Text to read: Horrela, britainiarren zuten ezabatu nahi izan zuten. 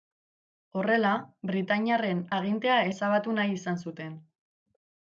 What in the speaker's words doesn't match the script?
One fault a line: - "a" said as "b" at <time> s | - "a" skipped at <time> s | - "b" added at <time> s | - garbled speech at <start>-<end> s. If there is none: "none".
- "zuten" said as "agintea" at 2.4 s